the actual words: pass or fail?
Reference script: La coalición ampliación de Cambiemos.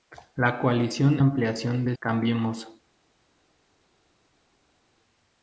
pass